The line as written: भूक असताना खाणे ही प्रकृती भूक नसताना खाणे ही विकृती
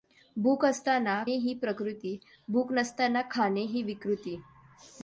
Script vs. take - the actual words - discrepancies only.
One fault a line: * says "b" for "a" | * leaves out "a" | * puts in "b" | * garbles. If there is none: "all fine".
* leaves out "खाणे"